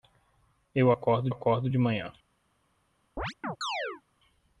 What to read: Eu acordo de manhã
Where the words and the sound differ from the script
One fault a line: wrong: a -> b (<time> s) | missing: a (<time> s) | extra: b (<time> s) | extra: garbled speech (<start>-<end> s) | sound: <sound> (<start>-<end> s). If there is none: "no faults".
extra: acordo (1.3 s)
sound: chirp (3.2-4.0 s)